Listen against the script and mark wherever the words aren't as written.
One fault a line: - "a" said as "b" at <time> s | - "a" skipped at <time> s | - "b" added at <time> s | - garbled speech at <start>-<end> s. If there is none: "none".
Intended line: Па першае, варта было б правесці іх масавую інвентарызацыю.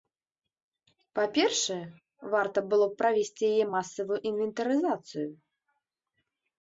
- "іх" said as "яе" at 3.5 s